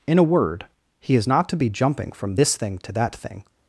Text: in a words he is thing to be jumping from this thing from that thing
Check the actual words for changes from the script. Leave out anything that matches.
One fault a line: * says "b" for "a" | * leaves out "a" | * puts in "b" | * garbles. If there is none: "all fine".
* says "word" for "words"
* says "not" for "thing"
* says "to" for "from"